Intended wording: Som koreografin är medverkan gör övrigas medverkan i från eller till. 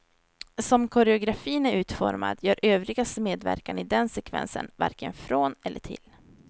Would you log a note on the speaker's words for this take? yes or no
yes